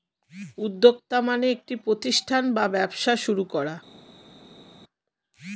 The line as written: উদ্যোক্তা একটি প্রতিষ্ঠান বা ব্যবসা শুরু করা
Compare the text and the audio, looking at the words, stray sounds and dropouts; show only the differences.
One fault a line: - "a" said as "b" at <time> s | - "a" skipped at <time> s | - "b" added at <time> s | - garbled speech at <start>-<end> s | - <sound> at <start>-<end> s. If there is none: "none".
- "মানে" added at 1.2 s